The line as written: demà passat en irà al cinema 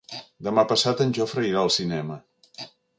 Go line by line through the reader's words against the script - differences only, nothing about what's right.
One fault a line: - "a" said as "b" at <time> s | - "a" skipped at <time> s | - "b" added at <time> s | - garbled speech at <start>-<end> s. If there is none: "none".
- "jofre" added at 1.2 s